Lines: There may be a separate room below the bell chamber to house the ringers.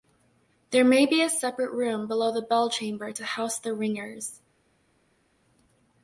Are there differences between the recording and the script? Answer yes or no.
no